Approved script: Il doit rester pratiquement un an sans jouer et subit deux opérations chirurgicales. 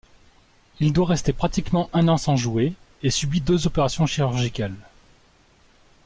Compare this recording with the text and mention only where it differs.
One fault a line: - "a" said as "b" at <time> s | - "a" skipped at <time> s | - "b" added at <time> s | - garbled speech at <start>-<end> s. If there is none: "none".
none